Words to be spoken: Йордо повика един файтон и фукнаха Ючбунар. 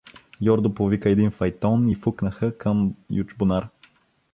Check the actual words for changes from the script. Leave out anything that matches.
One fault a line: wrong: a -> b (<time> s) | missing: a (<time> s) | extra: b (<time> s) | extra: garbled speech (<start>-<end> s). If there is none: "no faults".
extra: към (2.6 s)